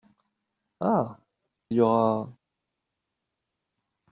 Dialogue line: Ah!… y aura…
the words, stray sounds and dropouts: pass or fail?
pass